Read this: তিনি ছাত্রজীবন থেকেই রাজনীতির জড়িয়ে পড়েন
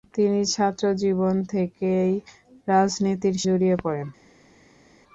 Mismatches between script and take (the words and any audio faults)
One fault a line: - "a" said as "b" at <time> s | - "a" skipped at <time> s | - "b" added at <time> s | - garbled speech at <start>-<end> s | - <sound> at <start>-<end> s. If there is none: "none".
none